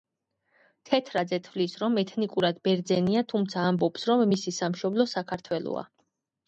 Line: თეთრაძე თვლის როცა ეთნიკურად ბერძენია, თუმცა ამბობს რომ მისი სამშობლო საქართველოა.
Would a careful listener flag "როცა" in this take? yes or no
yes